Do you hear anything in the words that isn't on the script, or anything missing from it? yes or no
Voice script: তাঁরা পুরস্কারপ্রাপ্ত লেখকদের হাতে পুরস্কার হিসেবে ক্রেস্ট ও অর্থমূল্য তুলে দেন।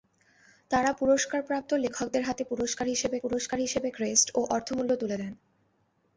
yes